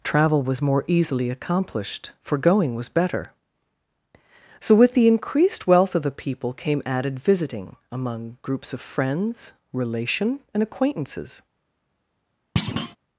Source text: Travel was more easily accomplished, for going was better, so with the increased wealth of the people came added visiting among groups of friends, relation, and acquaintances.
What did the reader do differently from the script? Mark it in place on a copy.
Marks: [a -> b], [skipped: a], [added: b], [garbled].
Travel was more easily accomplished, for going was better, so with the increased wealth of the people came added visiting among groups of friends, relation, and acquaintances.